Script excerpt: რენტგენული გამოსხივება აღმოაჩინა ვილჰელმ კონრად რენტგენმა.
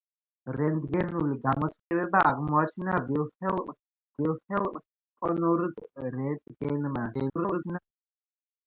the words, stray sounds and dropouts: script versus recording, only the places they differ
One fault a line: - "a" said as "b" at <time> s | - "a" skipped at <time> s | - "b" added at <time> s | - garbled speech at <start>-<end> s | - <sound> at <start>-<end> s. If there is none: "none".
- dropout at 1.8-1.9 s
- "ვილჰელმ" added at 4.2 s
- garbled speech at 7.1-7.8 s